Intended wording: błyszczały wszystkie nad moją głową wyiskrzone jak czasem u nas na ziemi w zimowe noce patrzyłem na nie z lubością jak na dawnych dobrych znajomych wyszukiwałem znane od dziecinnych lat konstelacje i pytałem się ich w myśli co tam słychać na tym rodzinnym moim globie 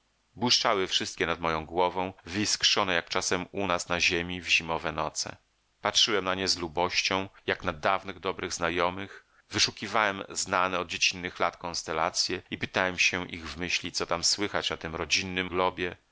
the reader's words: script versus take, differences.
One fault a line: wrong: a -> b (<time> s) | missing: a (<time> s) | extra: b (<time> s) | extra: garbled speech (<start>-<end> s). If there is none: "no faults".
missing: moim (15.5 s)